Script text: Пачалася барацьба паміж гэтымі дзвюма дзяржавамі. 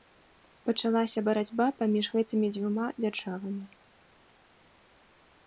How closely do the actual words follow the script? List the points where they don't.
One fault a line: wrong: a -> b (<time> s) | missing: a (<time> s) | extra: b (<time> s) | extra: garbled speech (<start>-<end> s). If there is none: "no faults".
no faults